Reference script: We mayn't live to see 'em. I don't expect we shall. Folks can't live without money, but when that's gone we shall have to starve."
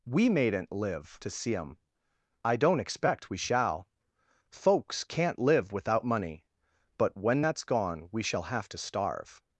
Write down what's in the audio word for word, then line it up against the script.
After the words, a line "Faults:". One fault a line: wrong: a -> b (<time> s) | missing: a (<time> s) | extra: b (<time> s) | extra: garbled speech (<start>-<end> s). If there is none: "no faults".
We mayn't live to see 'em. I don't expect we shall. Folks can't live without money, but when that's gone we shall have to starve."
Faults:
no faults